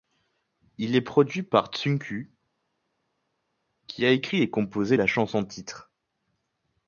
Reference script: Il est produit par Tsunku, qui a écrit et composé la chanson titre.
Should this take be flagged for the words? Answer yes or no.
no